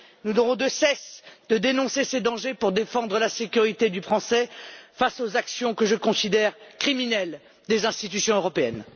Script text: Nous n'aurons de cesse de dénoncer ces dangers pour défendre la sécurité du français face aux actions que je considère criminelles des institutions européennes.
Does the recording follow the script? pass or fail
pass